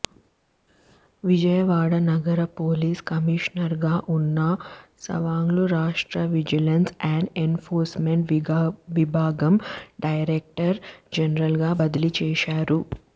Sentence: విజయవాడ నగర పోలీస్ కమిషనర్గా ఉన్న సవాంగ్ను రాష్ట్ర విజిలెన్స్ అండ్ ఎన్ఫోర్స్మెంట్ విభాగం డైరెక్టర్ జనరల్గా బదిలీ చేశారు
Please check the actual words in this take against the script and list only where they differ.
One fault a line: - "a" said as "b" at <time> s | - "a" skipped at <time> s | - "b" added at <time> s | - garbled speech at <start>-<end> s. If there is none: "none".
none